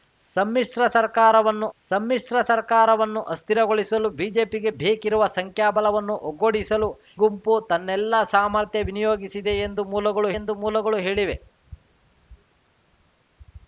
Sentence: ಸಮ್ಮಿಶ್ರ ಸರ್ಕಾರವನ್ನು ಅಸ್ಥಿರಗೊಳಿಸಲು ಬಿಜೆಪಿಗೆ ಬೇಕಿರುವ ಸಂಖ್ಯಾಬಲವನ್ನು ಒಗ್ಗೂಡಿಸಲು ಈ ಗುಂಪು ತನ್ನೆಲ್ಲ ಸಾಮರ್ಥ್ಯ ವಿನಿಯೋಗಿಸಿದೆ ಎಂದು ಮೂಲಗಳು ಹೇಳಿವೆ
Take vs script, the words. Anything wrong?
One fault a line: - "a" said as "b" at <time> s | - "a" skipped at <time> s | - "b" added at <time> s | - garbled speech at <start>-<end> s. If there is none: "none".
- "ಸಮ್ಮಿಶ್ರ ಸರ್ಕಾರವನ್ನು" added at 1.8 s
- "ಈ" skipped at 6.9 s
- "ಎಂದು ಮೂಲಗಳು" added at 10.4 s